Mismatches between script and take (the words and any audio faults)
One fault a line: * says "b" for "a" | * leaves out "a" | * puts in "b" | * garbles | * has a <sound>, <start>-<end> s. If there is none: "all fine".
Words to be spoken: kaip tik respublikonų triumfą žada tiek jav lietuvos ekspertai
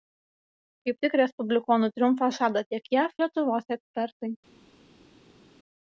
all fine